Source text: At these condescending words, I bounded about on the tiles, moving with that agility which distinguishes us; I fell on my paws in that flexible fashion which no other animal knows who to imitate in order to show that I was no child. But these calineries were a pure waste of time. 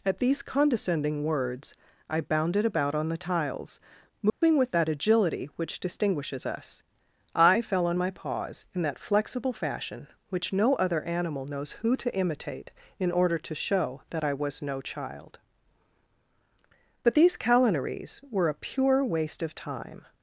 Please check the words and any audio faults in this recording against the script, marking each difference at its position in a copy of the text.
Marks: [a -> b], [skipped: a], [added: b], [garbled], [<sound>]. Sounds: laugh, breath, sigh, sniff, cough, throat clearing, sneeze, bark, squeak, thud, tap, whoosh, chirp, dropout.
At these condescending words, I bounded about on the tiles, moving [dropout] with that agility which distinguishes us; I fell on my paws in that flexible fashion which no other animal knows who to imitate in order to show that I was no child. But these calineries were a pure waste of time.